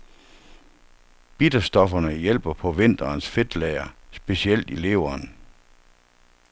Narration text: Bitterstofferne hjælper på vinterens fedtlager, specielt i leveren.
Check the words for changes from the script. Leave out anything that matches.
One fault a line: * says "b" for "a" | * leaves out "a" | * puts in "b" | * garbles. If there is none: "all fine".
all fine